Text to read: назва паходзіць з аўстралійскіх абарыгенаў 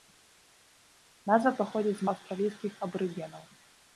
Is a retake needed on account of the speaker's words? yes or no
no